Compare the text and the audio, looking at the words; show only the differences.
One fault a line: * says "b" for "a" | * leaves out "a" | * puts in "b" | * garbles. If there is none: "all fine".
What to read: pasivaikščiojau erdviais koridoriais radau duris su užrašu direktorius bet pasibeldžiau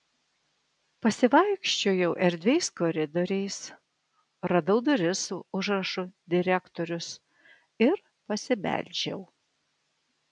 * says "ir" for "bet"